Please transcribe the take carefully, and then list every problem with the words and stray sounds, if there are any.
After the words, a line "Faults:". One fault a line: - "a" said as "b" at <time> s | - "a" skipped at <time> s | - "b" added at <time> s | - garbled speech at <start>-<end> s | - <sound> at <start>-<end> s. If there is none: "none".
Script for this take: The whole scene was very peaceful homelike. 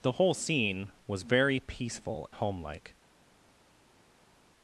The whole scene was very peaceful homelike.
Faults:
none